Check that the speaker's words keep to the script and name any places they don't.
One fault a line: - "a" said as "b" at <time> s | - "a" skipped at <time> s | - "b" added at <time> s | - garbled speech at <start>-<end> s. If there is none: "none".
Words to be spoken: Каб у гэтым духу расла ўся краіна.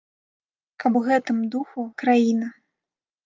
- "расла ўся" skipped at 1.8 s